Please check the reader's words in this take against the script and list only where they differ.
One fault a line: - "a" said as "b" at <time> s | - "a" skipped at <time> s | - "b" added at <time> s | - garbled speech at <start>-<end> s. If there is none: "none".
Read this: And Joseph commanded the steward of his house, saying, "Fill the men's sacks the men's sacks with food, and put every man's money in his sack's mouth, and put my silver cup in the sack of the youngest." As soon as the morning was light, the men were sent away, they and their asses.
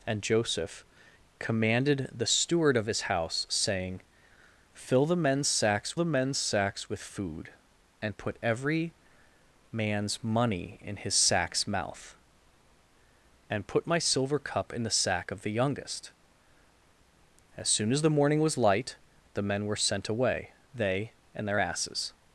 none